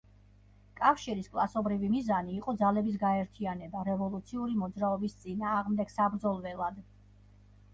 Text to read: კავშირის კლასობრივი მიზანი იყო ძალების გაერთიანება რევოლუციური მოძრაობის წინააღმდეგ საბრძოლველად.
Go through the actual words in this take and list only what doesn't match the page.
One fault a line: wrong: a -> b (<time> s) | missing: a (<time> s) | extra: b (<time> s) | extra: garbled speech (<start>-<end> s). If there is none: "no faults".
no faults